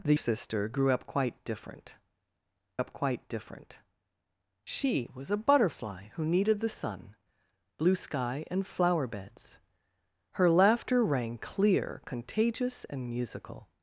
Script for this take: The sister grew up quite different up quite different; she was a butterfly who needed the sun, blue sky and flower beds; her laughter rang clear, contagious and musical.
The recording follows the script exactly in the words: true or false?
true